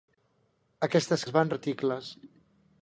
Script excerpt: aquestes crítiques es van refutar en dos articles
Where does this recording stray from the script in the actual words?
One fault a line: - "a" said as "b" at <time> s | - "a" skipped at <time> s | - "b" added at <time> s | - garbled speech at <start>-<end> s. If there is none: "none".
- "crítiques" skipped at 1.2 s
- "refutar en dos" skipped at 1.5 s